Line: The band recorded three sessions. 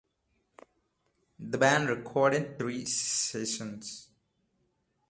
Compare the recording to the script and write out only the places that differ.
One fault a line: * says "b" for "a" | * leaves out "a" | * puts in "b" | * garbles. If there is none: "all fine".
all fine